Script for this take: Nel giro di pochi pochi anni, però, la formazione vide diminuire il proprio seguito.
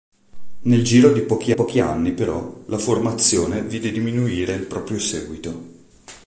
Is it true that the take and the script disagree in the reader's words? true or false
false